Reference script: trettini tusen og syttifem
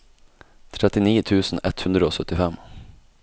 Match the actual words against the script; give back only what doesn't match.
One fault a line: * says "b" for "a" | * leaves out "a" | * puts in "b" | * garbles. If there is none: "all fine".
* puts in "ett hundre"